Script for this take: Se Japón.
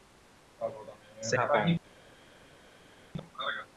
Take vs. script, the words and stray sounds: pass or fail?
pass